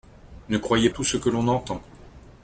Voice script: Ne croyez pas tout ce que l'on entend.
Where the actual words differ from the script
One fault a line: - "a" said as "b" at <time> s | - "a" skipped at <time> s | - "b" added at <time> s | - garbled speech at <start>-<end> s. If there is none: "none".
- "pas" skipped at 0.9 s